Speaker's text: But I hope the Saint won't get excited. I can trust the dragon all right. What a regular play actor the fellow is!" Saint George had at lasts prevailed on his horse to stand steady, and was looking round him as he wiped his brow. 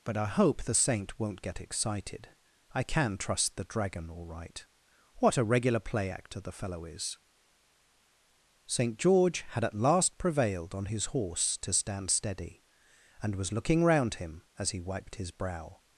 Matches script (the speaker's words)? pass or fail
fail